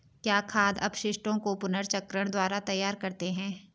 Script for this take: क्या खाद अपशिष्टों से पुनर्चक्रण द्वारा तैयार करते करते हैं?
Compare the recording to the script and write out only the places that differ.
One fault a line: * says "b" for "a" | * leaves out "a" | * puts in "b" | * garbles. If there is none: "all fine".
* says "को" for "से"
* leaves out "करते"